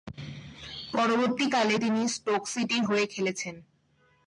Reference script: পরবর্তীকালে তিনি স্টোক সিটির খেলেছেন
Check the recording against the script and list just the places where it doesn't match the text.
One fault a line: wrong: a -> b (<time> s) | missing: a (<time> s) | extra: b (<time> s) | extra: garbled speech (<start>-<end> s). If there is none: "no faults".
extra: হয়ে (2.8 s)